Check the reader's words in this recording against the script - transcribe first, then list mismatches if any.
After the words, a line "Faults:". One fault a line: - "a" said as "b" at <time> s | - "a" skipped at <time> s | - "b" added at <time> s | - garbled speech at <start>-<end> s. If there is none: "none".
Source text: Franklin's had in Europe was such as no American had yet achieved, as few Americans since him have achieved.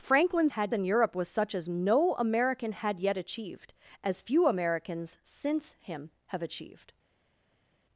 Franklin's had in Europe was such as no American had yet achieved, as few Americans since him have achieved.
Faults:
none